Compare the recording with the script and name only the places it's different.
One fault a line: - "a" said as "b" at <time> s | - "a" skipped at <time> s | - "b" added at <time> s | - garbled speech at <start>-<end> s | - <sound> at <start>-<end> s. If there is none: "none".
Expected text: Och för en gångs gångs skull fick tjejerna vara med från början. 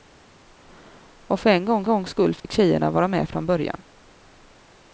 - dropout at 2.4-2.4 s